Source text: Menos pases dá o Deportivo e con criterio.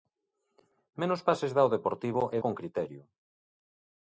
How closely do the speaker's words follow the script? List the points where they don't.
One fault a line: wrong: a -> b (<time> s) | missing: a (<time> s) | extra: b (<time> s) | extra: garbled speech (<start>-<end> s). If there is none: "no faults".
no faults